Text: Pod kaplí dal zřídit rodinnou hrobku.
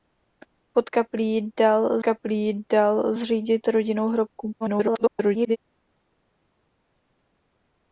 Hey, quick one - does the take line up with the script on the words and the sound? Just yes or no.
no